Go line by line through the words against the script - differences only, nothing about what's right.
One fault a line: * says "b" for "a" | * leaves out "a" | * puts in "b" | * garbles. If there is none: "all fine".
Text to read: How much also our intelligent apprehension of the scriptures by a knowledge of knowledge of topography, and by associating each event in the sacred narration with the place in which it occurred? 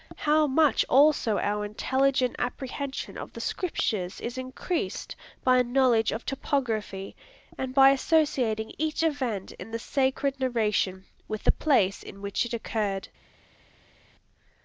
* puts in "is increased"
* leaves out "knowledge of"